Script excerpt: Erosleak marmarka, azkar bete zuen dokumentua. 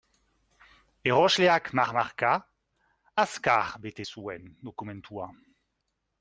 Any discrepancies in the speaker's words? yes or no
no